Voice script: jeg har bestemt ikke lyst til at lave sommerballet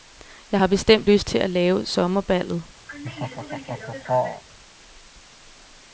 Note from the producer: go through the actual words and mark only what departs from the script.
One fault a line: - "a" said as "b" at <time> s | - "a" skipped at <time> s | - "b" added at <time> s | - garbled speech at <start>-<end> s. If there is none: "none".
- "ikke" skipped at 1.1 s